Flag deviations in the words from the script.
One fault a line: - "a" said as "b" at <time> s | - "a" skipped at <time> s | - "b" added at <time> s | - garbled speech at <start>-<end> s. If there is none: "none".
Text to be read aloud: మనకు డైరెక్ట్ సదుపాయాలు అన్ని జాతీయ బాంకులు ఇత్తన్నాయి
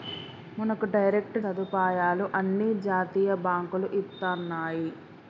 none